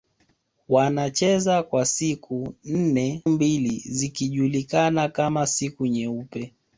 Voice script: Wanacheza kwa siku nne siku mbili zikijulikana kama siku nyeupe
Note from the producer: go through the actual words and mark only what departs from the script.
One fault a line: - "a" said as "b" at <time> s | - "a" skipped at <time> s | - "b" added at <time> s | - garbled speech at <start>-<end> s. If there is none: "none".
- "siku" skipped at 3.2 s